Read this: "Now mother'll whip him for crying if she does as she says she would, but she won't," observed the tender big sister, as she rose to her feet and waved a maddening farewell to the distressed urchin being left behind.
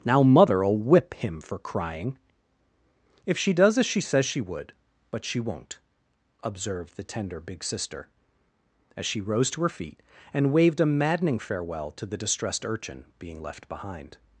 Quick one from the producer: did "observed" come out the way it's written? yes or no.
yes